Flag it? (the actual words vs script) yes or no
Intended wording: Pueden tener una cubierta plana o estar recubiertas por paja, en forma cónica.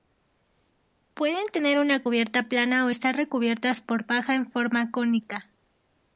no